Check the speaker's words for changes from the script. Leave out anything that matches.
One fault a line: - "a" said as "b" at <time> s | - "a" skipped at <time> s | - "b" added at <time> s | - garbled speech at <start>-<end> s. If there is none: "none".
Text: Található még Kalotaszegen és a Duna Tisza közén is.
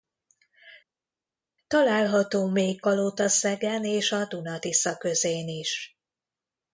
none